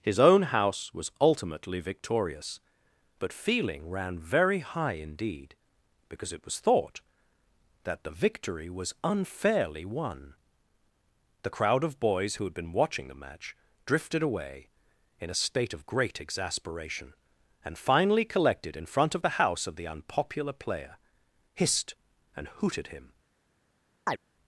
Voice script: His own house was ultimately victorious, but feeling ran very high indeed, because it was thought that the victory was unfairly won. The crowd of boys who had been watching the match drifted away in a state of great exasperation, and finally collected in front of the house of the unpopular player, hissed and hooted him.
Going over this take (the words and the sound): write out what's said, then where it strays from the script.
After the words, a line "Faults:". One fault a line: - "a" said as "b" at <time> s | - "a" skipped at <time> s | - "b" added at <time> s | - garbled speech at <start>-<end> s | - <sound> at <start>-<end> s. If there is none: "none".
His own house was ultimately victorious, but feeling ran very high indeed, because it was thought that the victory was unfairly won. The crowd of boys who had been watching the match drifted away in a state of great exasperation, and finally collected in front of the house of the unpopular player, hissed and hooted him.
Faults:
- chirp at 24.1-24.2 s